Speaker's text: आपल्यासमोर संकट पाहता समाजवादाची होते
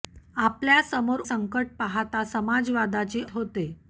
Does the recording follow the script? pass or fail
pass